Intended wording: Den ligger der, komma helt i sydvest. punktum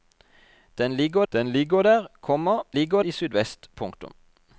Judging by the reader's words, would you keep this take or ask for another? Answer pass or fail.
fail